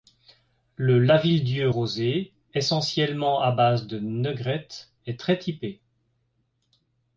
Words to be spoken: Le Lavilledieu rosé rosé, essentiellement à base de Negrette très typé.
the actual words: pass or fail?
fail